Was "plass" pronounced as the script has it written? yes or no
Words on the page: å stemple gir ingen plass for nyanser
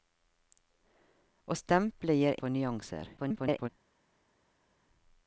no